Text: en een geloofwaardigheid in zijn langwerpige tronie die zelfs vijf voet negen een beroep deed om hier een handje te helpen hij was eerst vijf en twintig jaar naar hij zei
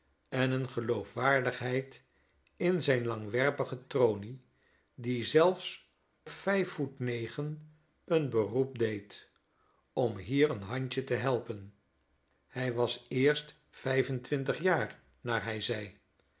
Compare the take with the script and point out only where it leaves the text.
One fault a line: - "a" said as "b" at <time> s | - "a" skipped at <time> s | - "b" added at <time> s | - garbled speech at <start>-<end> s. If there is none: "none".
none